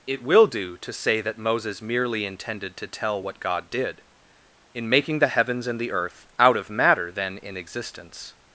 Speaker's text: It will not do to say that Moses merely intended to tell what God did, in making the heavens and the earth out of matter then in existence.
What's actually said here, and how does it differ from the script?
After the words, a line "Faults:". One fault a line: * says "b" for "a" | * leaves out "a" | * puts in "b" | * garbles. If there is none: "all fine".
It will do to say that Moses merely intended to tell what God did, in making the heavens and the earth out of matter then in existence.
Faults:
* leaves out "not"